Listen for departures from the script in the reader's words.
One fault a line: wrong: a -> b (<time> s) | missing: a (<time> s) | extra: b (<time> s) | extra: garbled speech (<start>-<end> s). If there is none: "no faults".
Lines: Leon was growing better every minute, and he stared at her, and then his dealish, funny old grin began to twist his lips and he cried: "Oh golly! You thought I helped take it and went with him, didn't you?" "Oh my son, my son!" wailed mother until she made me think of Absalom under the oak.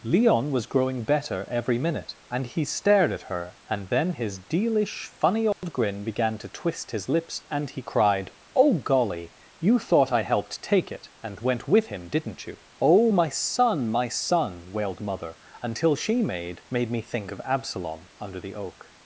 extra: made (16.7 s)